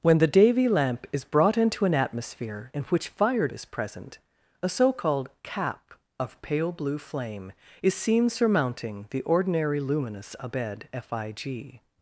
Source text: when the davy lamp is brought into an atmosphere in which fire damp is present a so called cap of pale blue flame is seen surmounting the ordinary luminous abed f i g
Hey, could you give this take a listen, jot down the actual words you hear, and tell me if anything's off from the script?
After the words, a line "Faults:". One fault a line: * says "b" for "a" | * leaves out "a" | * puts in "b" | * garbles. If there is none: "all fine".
when the davy lamp is brought into an atmosphere in which fire is present a so called cap of pale blue flame is seen surmounting the ordinary luminous abed f i g
Faults:
* leaves out "damp"